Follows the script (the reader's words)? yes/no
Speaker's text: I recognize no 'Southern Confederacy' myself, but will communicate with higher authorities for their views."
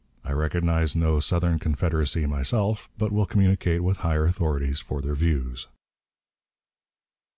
yes